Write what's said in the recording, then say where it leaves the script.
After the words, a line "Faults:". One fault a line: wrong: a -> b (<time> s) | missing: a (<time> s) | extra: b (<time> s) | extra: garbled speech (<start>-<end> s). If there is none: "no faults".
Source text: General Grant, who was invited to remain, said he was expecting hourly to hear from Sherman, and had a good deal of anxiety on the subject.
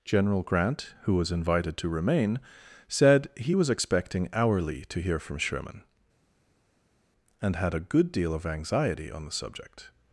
General Grant, who was invited to remain, said he was expecting hourly to hear from Sherman, and had a good deal of anxiety on the subject.
Faults:
no faults